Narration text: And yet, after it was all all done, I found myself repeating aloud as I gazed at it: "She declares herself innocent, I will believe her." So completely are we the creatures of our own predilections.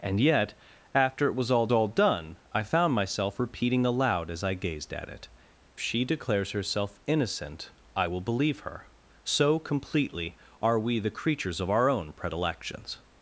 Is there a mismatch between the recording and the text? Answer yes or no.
no